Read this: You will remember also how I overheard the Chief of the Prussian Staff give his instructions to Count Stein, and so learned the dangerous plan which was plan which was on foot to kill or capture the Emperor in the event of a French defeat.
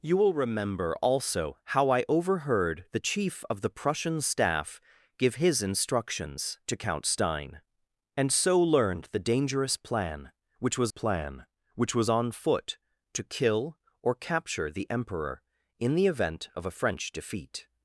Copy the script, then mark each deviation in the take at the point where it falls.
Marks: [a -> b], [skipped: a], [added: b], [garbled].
You will remember also how I overheard the Chief of the Prussian Staff give his instructions to Count Stein, and so learned the dangerous plan which was plan which was on foot to kill or capture the Emperor in the event of a French defeat.